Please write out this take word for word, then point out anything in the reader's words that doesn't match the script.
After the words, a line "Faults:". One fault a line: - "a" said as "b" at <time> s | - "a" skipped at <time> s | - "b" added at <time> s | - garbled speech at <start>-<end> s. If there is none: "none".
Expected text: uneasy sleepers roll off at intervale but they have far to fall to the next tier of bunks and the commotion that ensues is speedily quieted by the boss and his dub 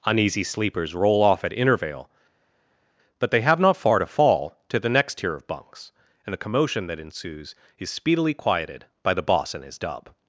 uneasy sleepers roll off at intervale but they have not far to fall to the next tier of bunks and the commotion that ensues is speedily quieted by the boss and his dub
Faults:
- "not" added at 3.6 s